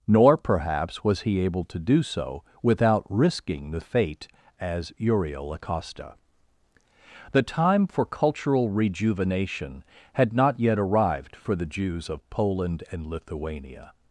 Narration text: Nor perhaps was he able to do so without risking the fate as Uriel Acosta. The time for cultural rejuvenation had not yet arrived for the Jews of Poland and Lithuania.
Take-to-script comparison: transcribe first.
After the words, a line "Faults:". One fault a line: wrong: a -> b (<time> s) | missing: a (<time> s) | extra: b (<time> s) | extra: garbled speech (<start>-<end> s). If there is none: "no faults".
Nor perhaps was he able to do so without risking the fate as Uriel Acosta. The time for cultural rejuvenation had not yet arrived for the Jews of Poland and Lithuania.
Faults:
no faults